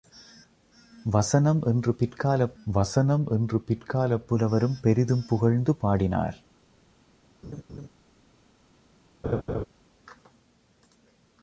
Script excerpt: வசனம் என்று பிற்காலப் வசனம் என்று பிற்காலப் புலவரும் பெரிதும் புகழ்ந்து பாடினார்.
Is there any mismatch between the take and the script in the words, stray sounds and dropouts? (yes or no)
yes